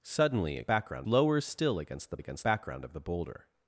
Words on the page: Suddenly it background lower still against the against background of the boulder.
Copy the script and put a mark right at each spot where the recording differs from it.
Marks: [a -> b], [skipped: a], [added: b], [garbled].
Suddenly it background lower still against the against background of the boulder.